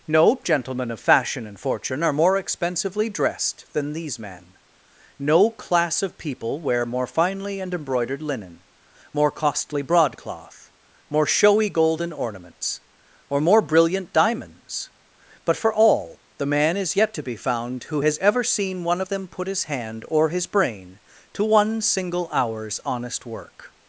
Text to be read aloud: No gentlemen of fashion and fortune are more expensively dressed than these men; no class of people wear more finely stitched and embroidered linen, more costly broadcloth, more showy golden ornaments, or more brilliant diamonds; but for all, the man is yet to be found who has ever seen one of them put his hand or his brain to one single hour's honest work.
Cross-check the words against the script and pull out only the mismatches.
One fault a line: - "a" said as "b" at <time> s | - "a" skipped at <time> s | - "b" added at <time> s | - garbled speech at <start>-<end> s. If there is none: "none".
- "stitched" skipped at 7.6 s